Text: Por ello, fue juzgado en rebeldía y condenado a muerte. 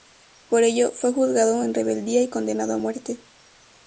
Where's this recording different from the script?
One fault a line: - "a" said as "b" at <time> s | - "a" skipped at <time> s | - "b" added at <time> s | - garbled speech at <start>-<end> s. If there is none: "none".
none